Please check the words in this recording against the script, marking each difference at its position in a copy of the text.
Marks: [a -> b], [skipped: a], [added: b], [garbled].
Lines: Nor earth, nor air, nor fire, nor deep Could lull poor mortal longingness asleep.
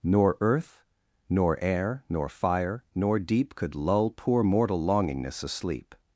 Nor earth, nor air, nor fire, nor deep Could lull poor mortal longingness asleep.